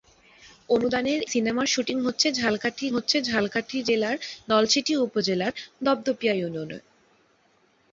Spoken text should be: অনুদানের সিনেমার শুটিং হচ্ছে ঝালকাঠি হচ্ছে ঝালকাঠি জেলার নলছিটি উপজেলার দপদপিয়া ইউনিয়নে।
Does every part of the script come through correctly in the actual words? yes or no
yes